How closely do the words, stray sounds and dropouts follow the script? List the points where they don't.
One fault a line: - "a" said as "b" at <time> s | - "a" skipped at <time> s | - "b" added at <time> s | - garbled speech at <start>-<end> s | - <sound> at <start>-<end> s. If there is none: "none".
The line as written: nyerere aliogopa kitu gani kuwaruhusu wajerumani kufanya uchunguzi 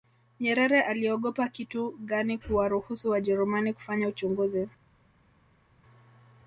none